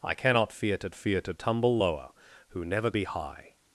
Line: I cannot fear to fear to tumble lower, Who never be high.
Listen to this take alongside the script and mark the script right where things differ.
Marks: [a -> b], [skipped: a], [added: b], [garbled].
I cannot fear to fear to tumble lower, Who never be high.